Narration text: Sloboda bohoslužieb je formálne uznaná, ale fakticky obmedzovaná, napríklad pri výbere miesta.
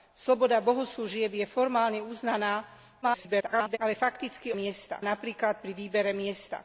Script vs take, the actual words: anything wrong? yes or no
yes